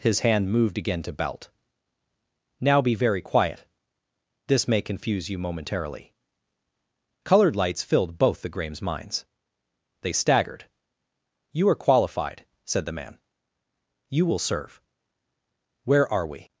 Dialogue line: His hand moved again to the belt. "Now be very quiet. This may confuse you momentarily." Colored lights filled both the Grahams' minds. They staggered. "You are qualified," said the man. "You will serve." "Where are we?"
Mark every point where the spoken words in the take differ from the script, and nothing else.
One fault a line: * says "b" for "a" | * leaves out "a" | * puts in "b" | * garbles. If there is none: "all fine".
* leaves out "the"